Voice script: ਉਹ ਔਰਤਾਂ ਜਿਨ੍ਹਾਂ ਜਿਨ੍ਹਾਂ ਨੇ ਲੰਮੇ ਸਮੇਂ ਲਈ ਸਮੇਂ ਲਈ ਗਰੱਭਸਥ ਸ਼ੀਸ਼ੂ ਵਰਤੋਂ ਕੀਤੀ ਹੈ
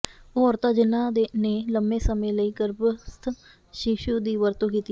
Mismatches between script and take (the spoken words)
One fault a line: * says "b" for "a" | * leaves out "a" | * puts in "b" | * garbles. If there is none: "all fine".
* leaves out "ਜਿਨ੍ਹਾਂ"
* leaves out "ਸਮੇਂ ਲਈ"
* puts in "ਦੀ"